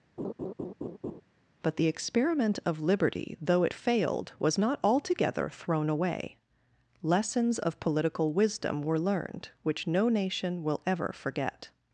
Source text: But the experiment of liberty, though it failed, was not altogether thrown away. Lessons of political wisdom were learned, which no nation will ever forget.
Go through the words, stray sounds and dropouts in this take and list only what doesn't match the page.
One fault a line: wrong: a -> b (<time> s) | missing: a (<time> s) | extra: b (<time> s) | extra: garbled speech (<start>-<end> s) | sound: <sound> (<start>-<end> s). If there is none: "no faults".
sound: laugh (0.2-1.2 s)